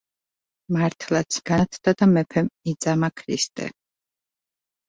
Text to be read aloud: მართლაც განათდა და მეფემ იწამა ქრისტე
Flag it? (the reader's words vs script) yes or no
no